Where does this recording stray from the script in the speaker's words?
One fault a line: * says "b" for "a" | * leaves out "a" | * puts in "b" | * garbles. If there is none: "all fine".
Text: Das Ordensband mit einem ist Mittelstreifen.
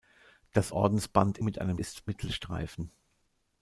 all fine